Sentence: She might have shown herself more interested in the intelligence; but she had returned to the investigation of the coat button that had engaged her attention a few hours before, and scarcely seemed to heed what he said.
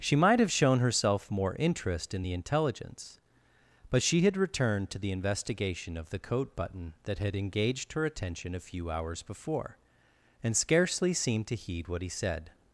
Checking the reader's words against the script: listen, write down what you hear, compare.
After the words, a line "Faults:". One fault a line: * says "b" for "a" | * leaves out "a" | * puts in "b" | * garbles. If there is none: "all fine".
She might have shown herself more interest in the intelligence; but she had returned to the investigation of the coat button that had engaged her attention a few hours before, and scarcely seemed to heed what he said.
Faults:
* says "interest" for "interested"